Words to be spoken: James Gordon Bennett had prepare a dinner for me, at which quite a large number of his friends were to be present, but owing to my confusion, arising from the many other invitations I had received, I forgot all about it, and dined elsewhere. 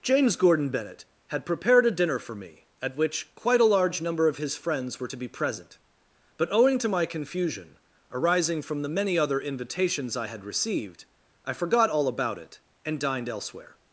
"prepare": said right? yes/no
no